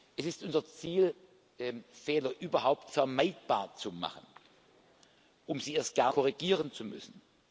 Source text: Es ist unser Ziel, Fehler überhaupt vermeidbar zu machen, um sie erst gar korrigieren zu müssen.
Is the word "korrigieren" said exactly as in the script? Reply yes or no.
yes